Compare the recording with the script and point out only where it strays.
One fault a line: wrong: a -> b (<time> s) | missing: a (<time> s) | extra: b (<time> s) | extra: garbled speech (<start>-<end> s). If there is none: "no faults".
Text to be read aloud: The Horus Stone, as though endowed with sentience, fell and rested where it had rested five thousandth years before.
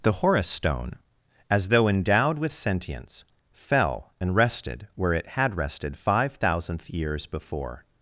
no faults